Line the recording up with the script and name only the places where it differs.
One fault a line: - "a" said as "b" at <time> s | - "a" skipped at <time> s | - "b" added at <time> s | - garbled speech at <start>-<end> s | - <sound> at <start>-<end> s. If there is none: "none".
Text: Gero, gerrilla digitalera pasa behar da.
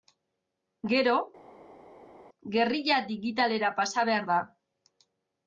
none